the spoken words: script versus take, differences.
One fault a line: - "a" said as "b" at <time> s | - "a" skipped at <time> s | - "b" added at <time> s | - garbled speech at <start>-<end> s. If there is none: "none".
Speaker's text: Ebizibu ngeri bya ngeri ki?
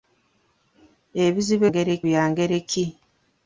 none